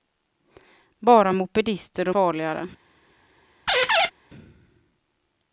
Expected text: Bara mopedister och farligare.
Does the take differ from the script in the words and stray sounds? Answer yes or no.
yes